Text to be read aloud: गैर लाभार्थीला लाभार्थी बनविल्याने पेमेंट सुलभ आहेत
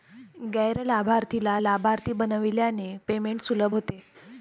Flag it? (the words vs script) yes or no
yes